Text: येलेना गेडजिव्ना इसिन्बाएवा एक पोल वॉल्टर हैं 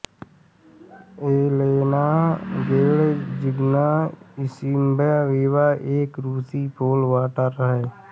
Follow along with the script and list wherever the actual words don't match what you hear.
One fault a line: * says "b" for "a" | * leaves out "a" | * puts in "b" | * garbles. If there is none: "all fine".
* puts in "रूसी"